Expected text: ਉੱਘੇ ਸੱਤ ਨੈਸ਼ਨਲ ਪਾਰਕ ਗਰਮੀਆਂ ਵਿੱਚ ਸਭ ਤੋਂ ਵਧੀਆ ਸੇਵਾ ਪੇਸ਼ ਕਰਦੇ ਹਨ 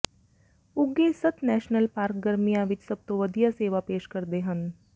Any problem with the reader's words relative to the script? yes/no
no